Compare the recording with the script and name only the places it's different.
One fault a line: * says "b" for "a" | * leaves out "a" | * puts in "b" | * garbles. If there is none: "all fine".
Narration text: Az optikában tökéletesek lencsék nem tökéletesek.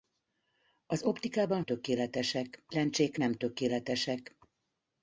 all fine